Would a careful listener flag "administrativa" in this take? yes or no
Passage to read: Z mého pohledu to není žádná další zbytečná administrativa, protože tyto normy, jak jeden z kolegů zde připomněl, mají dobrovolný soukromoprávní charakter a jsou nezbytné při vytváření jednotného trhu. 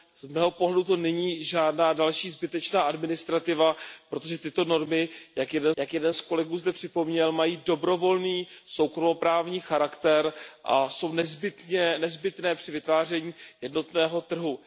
no